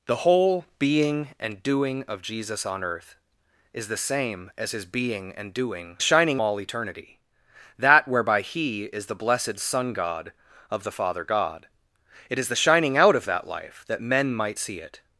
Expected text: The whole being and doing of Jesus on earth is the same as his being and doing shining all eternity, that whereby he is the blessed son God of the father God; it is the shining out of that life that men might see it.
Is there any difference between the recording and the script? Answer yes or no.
no